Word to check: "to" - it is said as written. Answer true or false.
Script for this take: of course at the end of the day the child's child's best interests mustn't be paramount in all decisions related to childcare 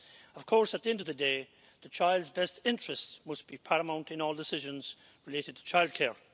true